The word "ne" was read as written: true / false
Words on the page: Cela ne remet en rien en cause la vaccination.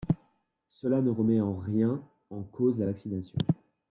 true